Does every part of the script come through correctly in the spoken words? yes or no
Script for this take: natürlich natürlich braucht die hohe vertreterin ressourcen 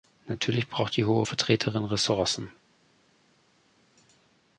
no